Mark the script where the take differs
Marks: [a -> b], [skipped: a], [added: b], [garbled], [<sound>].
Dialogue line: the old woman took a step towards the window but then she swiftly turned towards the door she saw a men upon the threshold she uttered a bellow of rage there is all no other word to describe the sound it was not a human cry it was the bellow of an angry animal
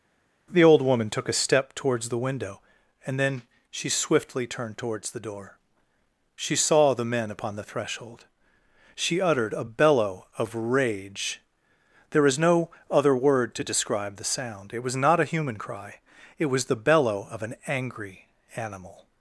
the old woman took a step towards the window [but -> and] then she swiftly turned towards the door she saw [a -> the] men upon the threshold she uttered a bellow of rage there is [skipped: all] no other word to describe the sound it was not a human cry it was the bellow of an angry animal